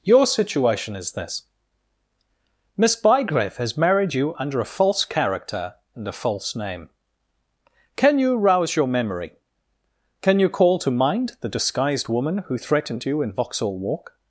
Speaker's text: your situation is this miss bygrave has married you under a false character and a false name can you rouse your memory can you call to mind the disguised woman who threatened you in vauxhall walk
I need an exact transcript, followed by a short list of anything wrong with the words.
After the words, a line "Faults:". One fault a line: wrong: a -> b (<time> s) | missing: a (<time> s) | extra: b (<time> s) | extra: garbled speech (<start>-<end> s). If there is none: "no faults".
your situation is this miss bygrave has married you under a false character and a false name can you rouse your memory can you call to mind the disguised woman who threatened you in vauxhall walk
Faults:
no faults